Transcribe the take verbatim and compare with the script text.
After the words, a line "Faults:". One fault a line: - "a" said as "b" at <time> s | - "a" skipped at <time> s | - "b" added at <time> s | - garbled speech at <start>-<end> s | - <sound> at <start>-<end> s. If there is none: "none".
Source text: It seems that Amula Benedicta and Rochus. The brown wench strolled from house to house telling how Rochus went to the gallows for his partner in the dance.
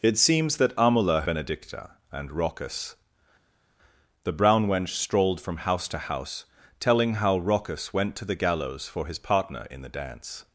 It seems that Amula Benedicta and Rochus. The brown wench strolled from house to house telling how Rochus went to the gallows for his partner in the dance.
Faults:
none